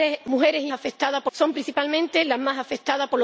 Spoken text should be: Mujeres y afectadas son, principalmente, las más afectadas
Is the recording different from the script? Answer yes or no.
no